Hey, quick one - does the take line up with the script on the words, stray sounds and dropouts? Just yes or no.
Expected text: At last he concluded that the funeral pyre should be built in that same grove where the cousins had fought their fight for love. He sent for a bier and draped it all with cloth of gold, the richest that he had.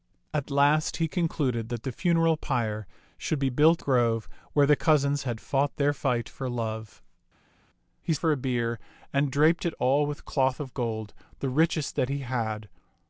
no